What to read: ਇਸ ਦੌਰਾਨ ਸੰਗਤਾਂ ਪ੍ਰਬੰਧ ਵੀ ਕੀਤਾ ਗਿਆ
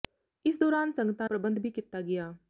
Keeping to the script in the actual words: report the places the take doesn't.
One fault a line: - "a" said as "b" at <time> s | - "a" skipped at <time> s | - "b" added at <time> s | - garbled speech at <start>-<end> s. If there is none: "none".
none